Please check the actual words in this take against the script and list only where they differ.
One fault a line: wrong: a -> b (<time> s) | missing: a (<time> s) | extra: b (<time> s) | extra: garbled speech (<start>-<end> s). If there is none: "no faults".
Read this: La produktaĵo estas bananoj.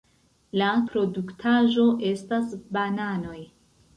no faults